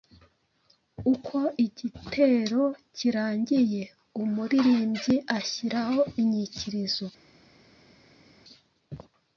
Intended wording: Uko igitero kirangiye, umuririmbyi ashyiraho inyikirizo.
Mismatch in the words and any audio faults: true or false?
false